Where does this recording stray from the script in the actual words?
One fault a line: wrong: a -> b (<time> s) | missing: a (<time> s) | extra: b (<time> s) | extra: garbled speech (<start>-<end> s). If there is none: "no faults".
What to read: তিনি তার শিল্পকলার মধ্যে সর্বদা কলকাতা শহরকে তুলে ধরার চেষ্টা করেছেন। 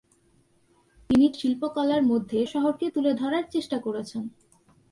missing: তার (1.3 s)
missing: সর্বদা কলকাতা (2.4 s)